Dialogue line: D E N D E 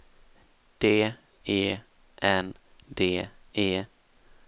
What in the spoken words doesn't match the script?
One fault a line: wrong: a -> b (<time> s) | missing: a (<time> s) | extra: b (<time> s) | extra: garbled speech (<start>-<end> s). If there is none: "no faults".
no faults